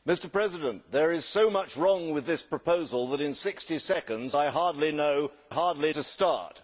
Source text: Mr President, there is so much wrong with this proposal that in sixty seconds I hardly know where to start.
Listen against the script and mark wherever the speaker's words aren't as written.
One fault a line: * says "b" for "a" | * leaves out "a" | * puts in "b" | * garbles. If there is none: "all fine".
* says "hardly" for "where"